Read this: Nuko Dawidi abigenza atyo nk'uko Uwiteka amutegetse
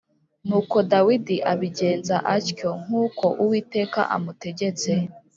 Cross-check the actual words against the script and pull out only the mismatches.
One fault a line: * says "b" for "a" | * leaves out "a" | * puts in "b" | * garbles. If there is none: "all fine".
all fine